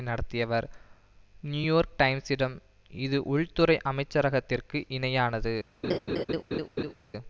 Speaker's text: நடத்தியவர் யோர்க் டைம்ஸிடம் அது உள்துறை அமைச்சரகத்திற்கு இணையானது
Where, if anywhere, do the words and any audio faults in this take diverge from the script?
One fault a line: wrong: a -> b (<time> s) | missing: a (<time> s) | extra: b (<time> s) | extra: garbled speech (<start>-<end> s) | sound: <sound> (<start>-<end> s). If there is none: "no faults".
extra: நியூ (1.4 s)
wrong: அது -> இது (2.9 s)
sound: laugh (5.8-6.9 s)